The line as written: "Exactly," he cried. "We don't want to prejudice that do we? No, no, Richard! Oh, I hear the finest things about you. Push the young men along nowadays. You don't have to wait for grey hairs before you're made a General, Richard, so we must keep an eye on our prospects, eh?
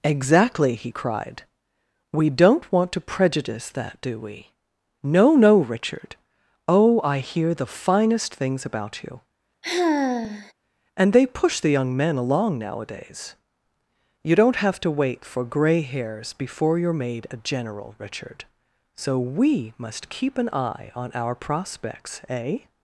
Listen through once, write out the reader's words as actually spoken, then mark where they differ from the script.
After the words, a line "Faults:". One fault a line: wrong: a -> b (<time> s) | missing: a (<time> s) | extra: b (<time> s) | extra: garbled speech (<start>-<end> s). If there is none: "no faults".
"Exactly," he cried. "We don't want to prejudice that do we? No, no, Richard! Oh, I hear the finest things about you. And they push the young men along nowadays. You don't have to wait for grey hairs before you're made a General, Richard, so we must keep an eye on our prospects, eh?
Faults:
extra: And they (11.0 s)